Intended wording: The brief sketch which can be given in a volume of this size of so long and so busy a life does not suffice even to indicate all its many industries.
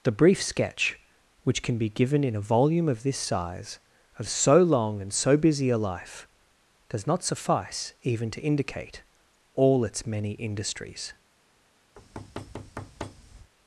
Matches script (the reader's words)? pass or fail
pass